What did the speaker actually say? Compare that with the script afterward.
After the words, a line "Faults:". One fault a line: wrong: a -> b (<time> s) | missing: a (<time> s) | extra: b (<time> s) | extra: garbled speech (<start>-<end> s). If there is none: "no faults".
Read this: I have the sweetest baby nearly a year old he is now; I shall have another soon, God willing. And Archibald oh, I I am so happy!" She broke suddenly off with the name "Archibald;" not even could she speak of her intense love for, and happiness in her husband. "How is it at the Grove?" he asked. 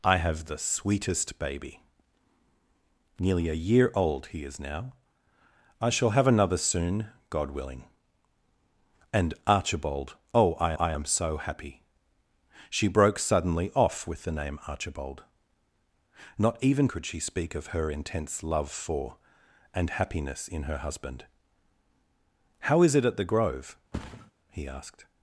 I have the sweetest baby nearly a year old he is now; I shall have another soon, God willing. And Archibald oh, I I am so happy!" She broke suddenly off with the name "Archibald;" not even could she speak of her intense love for, and happiness in her husband. "How is it at the Grove?" he asked.
Faults:
no faults